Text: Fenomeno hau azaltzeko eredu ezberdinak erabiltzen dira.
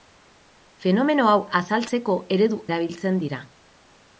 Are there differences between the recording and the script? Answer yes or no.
yes